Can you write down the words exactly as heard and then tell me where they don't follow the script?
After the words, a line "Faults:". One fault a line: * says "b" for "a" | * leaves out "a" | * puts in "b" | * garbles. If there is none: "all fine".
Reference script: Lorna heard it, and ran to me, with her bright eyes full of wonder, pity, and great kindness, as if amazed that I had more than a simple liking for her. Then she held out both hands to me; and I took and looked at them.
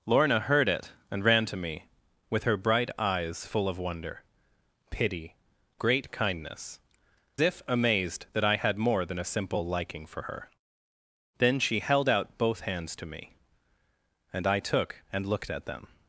Lorna heard it, and ran to me, with her bright eyes full of wonder, pity, great kindness, if amazed that I had more than a simple liking for her. Then she held out both hands to me; and I took and looked at them.
Faults:
* leaves out "and"
* leaves out "as"